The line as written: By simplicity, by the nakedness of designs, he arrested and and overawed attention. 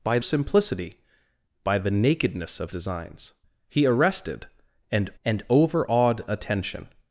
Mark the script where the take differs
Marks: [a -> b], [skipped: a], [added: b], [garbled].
By simplicity, by the nakedness of designs, he arrested and and overawed attention.